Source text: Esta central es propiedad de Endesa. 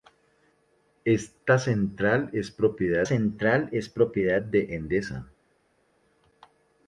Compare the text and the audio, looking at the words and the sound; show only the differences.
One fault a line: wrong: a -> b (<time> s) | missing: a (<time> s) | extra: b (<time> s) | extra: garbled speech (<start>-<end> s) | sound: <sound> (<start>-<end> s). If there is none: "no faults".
extra: central es propiedad (3.0 s)